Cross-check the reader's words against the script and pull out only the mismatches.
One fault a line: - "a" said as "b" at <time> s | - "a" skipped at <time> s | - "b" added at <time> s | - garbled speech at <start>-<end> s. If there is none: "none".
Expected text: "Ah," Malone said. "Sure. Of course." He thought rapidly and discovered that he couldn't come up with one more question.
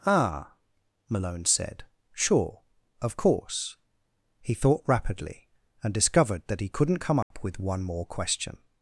none